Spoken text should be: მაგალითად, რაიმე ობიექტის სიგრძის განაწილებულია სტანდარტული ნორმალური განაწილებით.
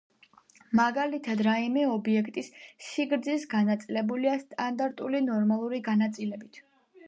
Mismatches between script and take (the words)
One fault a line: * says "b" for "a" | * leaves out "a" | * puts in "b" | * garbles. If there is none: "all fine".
all fine